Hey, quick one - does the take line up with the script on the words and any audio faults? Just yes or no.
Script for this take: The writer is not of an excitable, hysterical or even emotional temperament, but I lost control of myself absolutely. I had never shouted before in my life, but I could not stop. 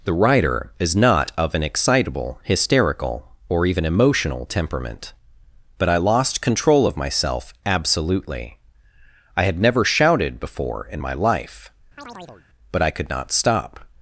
no